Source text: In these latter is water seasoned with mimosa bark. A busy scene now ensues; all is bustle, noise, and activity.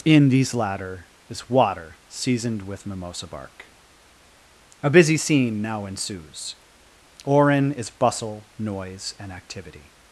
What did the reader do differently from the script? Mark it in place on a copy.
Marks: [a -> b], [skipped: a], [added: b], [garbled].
In these latter is water seasoned with mimosa bark. A busy scene now ensues; [all -> orin] is bustle, noise, and activity.